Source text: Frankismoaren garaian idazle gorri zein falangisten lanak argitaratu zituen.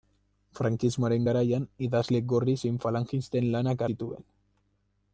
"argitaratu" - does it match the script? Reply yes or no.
no